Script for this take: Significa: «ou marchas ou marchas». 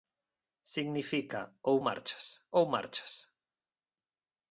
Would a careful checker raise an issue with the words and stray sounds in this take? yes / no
no